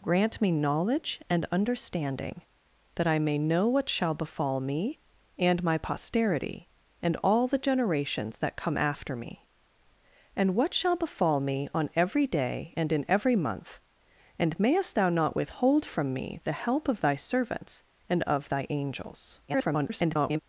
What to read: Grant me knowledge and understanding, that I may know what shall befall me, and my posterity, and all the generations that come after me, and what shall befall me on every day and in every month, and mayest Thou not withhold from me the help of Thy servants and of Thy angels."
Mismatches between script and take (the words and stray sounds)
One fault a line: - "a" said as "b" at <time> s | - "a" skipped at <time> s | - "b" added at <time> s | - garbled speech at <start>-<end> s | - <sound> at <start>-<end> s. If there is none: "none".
- garbled speech at 19.5-20.4 s